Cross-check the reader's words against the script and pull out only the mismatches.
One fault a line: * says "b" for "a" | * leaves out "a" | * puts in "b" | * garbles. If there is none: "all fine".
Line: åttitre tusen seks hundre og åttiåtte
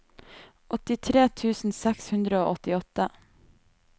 all fine